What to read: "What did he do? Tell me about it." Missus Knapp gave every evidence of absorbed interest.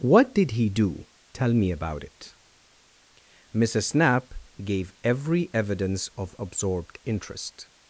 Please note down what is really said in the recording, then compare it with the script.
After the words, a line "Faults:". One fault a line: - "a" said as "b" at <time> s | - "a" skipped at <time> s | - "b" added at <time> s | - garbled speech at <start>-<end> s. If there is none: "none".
"What did he do? Tell me about it." Missus Knapp gave every evidence of absorbed interest.
Faults:
none